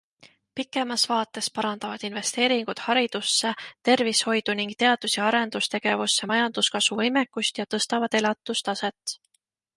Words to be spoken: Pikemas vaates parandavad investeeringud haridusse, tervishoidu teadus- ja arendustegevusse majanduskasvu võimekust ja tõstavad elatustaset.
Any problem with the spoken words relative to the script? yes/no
yes